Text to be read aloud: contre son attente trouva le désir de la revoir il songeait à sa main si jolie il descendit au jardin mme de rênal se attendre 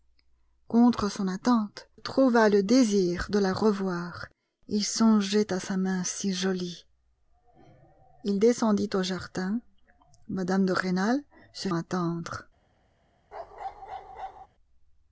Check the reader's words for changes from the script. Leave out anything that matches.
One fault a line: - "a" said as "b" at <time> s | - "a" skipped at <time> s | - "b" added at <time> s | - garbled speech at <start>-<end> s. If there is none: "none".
none